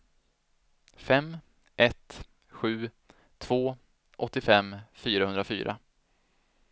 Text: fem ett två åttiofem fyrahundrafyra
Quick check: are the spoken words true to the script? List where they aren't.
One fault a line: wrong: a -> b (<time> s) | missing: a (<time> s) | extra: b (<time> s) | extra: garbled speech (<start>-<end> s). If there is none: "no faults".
extra: sju (2.5 s)